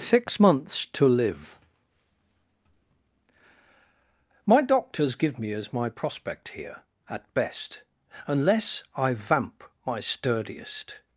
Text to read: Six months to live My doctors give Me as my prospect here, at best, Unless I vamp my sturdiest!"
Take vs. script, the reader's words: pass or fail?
pass